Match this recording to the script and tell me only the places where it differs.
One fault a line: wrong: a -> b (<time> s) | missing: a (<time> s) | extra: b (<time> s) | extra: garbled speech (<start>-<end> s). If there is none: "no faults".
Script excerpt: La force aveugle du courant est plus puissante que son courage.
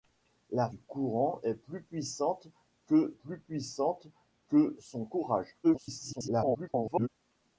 missing: force aveugle (0.7 s)
extra: plus puissante que (3.1 s)
extra: garbled speech (5.6-7.1 s)